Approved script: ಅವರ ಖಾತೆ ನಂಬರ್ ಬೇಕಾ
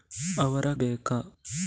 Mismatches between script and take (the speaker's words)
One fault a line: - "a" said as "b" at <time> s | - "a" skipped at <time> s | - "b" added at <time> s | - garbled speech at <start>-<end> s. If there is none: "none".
- "ಖಾತೆ ನಂಬರ್" skipped at 0.7 s